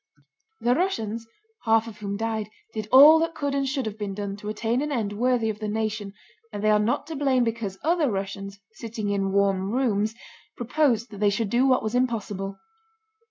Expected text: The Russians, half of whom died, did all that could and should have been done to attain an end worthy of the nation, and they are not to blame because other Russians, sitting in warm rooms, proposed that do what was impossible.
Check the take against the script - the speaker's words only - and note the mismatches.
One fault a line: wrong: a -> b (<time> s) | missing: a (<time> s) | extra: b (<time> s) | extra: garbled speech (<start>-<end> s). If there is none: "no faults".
extra: they should (11.2 s)